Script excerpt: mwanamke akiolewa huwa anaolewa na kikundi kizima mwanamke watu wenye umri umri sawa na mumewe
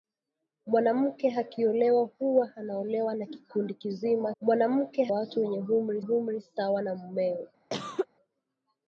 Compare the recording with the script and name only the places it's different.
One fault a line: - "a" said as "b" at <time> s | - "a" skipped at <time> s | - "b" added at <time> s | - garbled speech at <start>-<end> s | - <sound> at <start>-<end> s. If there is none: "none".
- cough at 7.7-8.1 s